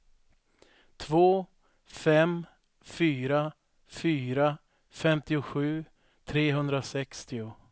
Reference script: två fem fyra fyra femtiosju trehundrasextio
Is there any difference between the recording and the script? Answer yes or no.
no